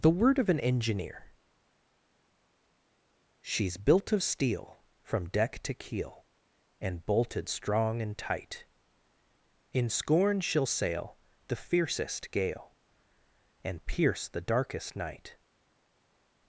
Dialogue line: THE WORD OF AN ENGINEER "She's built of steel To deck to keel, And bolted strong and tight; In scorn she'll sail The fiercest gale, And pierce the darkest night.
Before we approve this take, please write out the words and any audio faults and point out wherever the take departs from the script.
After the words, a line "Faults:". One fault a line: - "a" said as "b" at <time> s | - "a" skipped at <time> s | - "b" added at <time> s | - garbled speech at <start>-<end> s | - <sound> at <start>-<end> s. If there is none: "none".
THE WORD OF AN ENGINEER "She's built of steel From deck to keel, And bolted strong and tight; In scorn she'll sail The fiercest gale, And pierce the darkest night.
Faults:
- "To" said as "From" at 5.0 s